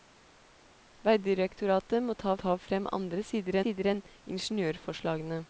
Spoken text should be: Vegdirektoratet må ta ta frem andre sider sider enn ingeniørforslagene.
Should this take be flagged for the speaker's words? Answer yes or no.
no